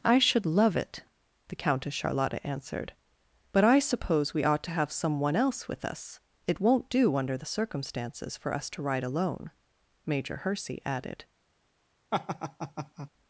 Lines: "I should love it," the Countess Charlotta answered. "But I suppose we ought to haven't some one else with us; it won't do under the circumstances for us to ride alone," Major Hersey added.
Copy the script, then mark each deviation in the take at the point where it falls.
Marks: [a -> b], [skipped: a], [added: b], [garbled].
"I should love it," the Countess Charlotta answered. "But I suppose we ought to [haven't -> have] some one else with us; it won't do under the circumstances for us to ride alone," Major Hersey added.